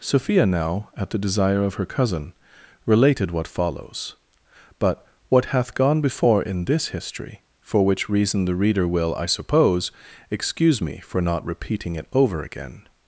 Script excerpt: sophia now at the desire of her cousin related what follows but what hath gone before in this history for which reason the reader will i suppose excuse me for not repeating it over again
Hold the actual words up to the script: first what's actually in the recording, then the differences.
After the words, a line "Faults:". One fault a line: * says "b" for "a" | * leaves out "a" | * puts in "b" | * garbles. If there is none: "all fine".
sophia now at the desire of her cousin related what follows but what hath gone before in this history for which reason the reader will i suppose excuse me for not repeating it over again
Faults:
all fine